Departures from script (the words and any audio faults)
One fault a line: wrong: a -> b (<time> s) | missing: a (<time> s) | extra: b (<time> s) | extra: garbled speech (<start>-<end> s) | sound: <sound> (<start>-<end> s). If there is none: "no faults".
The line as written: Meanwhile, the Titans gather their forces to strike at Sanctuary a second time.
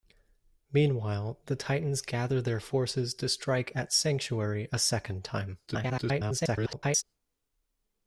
extra: garbled speech (5.7-7.0 s)